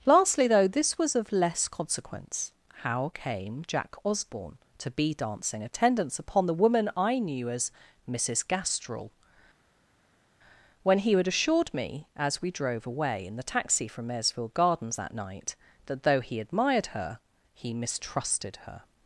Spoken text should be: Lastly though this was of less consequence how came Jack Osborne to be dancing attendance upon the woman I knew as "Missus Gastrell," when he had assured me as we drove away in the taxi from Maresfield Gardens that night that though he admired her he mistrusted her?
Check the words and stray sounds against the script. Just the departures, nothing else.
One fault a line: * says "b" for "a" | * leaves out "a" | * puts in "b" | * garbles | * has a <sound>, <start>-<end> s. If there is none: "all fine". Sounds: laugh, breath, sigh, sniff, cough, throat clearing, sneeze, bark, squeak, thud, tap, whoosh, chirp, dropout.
all fine